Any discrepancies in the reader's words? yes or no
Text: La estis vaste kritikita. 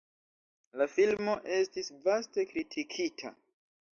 yes